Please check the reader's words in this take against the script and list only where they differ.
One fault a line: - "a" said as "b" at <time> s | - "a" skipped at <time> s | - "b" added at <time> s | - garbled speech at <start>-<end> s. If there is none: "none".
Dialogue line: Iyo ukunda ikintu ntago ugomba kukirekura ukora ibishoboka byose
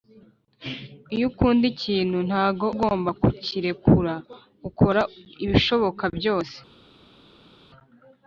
none